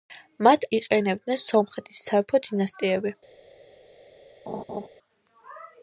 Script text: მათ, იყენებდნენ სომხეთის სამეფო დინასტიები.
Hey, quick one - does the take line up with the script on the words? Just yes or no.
yes